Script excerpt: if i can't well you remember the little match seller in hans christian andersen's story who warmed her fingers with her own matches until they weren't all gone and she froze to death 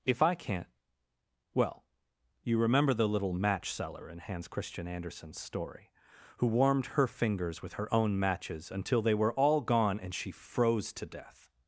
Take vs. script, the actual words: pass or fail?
fail